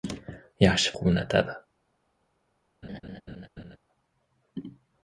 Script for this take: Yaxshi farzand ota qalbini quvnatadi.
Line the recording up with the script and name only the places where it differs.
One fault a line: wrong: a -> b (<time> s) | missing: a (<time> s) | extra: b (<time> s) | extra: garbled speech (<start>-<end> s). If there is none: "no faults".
missing: farzand ota qalbini (0.9 s)